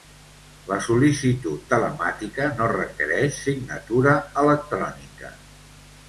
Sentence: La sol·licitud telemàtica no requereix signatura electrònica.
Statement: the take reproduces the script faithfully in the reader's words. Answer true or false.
true